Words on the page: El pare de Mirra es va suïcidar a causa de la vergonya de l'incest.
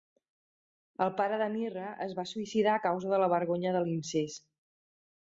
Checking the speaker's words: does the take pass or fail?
pass